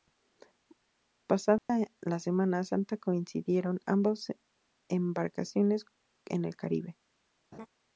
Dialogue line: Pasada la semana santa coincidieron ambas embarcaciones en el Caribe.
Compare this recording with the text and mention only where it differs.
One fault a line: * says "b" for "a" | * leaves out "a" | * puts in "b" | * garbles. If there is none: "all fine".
all fine